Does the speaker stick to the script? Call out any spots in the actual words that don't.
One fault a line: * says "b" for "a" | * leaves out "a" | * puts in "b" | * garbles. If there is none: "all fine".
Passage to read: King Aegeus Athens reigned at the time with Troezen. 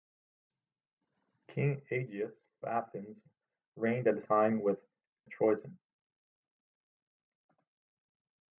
all fine